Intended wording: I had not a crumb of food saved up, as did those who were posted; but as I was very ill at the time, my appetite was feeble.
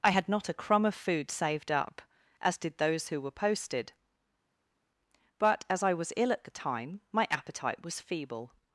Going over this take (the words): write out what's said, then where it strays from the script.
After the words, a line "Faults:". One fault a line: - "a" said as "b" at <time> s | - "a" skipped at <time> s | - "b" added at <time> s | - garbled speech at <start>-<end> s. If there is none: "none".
I had not a crumb of food saved up, as did those who were posted; but as I was ill at the time, my appetite was feeble.
Faults:
- "very" skipped at 6.1 s